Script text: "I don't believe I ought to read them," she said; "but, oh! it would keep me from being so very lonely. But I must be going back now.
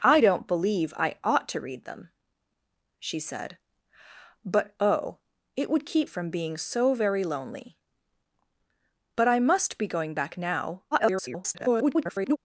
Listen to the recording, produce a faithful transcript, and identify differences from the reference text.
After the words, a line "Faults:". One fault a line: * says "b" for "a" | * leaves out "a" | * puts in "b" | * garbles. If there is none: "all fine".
"I don't believe I ought to read them," she said; "but, oh! it would keep from being so very lonely. But I must be going back now. [garbled]
Faults:
* leaves out "me"
* garbles